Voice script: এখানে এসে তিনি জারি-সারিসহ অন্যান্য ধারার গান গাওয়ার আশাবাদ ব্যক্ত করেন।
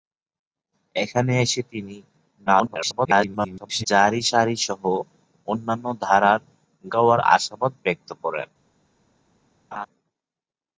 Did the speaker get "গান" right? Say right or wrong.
wrong